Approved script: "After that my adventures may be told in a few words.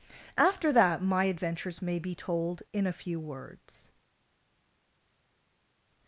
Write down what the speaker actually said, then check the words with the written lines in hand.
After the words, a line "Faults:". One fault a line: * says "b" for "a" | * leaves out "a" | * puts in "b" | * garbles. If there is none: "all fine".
"After that my adventures may be told in a few words.
Faults:
all fine